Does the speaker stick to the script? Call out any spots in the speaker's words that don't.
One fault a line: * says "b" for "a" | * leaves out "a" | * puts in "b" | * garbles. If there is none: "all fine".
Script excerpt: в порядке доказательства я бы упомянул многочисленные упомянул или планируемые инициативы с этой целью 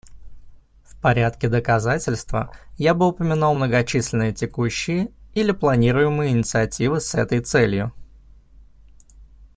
* says "текущие" for "упомянул"